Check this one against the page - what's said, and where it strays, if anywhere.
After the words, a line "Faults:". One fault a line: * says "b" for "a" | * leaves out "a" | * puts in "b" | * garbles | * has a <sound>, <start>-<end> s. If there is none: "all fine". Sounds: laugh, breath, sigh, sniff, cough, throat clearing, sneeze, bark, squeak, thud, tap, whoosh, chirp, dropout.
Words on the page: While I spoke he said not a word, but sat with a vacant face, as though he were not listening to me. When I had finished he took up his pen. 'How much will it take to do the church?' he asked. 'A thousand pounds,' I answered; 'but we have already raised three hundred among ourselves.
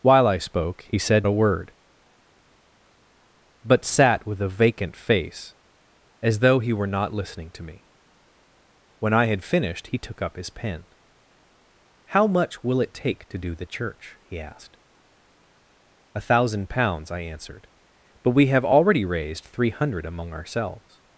While I spoke he said a word, but sat with a vacant face, as though he were not listening to me. When I had finished he took up his pen. 'How much will it take to do the church?' he asked. 'A thousand pounds,' I answered; 'but we have already raised three hundred among ourselves.
Faults:
* leaves out "not"